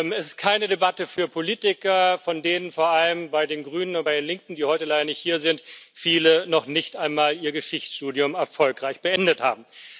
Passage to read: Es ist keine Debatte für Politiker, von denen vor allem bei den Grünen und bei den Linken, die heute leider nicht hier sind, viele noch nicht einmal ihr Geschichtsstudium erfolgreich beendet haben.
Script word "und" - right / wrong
right